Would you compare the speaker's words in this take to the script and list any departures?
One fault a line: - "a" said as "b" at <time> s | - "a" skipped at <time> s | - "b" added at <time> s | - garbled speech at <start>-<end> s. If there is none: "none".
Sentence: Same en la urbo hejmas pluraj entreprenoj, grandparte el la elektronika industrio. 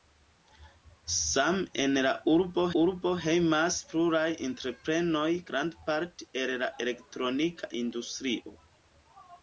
- "urbo" added at 2.8 s